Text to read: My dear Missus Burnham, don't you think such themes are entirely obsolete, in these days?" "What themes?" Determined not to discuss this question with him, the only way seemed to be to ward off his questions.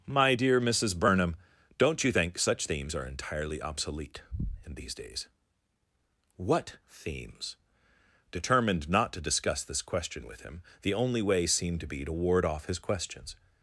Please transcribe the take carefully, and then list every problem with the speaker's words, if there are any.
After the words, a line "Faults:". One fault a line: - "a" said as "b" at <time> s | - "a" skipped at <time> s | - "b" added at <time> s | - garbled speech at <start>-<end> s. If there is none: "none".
My dear Missus Burnham, don't you think such themes are entirely obsolete, in these days?" "What themes?" Determined not to discuss this question with him, the only way seemed to be to ward off his questions.
Faults:
none